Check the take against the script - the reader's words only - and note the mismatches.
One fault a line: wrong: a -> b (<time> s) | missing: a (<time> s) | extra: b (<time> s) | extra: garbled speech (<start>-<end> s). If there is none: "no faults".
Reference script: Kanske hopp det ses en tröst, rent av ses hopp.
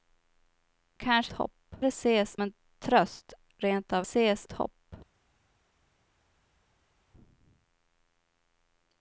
no faults